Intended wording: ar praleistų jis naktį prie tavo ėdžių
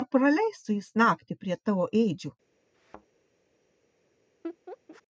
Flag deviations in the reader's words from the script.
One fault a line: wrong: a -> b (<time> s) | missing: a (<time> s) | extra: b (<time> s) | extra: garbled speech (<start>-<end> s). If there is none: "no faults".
no faults